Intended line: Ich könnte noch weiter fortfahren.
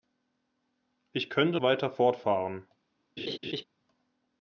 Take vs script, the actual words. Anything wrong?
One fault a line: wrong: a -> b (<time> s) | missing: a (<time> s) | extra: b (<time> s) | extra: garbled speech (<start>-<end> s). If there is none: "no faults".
missing: noch (1.6 s)